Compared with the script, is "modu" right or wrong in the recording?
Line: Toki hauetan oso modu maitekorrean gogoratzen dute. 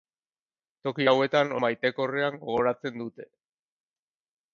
wrong